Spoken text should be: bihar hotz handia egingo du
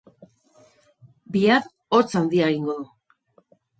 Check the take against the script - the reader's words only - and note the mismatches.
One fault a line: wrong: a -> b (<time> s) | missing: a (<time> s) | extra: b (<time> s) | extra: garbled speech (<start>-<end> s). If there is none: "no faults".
no faults